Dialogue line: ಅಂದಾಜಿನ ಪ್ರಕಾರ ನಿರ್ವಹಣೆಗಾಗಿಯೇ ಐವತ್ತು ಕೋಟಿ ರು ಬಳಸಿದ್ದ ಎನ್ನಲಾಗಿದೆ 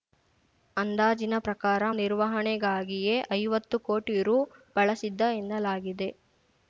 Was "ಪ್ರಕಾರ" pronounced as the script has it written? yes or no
yes